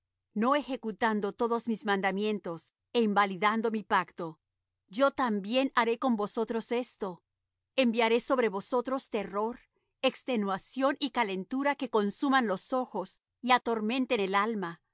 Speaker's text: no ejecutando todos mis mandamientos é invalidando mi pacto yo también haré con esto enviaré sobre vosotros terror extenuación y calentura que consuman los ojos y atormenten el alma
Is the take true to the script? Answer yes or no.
no